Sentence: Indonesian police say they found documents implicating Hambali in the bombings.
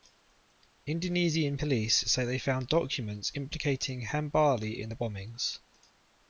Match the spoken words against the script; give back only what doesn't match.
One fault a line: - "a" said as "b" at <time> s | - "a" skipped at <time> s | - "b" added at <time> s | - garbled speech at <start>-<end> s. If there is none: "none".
none